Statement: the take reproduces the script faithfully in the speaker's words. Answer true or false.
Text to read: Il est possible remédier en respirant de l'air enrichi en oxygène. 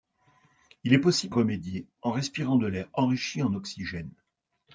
true